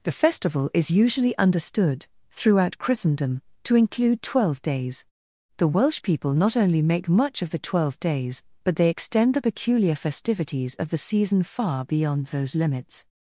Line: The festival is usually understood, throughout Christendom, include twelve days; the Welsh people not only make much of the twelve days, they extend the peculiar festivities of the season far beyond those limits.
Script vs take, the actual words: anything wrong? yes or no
yes